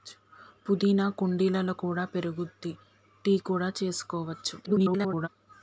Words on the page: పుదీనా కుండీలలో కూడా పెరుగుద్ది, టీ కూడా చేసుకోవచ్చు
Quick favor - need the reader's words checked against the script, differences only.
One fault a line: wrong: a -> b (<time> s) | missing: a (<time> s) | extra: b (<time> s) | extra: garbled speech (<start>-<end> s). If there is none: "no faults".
extra: garbled speech (4.6-5.3 s)